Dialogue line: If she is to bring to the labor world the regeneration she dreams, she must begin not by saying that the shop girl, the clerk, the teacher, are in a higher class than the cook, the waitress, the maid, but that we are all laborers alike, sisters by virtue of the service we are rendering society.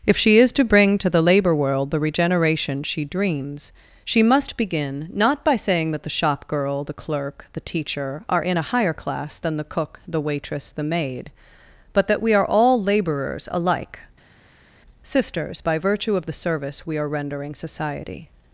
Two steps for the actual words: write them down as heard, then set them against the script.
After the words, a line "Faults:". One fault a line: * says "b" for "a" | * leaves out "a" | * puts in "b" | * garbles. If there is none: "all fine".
If she is to bring to the labor world the regeneration she dreams, she must begin not by saying that the shop girl, the clerk, the teacher, are in a higher class than the cook, the waitress, the maid, but that we are all laborers alike, sisters by virtue of the service we are rendering society.
Faults:
all fine